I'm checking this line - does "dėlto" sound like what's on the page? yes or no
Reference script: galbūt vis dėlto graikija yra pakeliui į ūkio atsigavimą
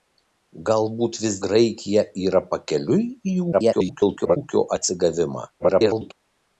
no